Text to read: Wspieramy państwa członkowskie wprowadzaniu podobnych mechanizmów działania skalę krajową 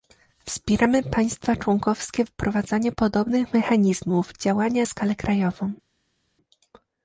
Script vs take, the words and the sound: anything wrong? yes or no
no